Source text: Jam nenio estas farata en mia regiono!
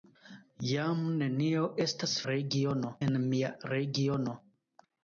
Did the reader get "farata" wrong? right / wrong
wrong